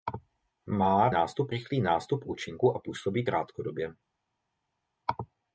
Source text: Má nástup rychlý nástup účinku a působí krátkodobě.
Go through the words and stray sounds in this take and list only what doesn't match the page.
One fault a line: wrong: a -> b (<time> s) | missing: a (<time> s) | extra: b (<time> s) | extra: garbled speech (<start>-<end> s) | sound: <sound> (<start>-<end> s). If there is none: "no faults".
no faults